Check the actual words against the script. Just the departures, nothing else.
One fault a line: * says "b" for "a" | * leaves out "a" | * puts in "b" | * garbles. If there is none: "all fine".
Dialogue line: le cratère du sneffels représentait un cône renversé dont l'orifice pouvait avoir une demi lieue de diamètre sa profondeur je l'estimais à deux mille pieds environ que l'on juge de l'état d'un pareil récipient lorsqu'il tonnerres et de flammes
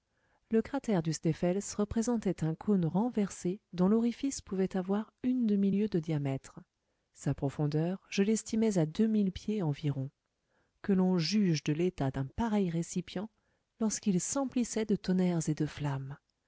* puts in "s'emplissait de"